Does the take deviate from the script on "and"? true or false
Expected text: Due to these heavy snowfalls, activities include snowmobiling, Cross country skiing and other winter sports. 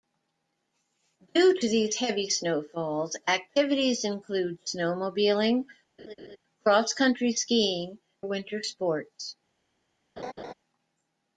true